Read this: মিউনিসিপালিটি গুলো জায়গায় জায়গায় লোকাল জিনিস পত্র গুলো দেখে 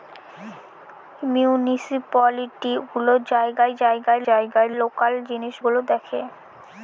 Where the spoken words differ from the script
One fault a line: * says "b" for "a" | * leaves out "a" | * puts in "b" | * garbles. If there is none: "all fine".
* puts in "জায়গায়"
* leaves out "পত্র"